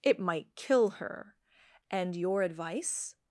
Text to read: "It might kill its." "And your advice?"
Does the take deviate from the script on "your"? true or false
false